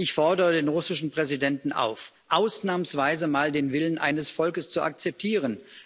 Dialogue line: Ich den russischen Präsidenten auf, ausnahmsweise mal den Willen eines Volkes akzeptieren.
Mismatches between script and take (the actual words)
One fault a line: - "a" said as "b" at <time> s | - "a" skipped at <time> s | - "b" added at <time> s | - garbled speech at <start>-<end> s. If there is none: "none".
- "fordere" added at 0.1 s
- "zu" added at 4.7 s